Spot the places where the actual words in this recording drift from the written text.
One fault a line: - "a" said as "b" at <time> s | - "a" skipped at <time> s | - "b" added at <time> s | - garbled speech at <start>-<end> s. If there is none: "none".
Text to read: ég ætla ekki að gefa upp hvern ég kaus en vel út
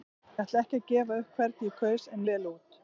none